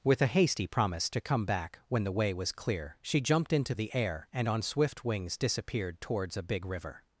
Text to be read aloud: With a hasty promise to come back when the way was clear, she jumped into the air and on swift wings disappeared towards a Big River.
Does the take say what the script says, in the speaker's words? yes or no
yes